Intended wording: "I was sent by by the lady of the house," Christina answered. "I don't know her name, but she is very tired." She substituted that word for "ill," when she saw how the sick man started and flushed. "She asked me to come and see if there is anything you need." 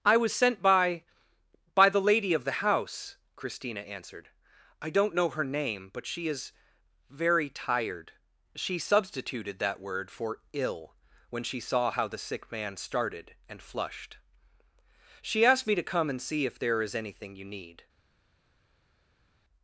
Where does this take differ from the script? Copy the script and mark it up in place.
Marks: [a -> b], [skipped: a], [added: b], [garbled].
"I was sent by by the lady of the house," Christina answered. "I don't know her name, but she is very tired." She substituted that word for "ill," when she saw how the sick man started and flushed. "She asked me to come and see if there is anything you need."